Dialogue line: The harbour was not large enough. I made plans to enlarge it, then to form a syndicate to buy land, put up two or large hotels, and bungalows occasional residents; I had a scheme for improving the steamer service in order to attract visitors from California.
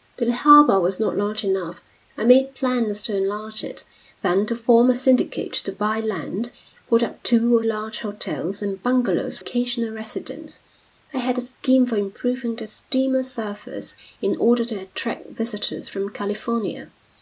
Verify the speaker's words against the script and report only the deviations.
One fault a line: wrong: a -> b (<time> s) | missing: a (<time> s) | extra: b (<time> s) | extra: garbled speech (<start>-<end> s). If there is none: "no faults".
no faults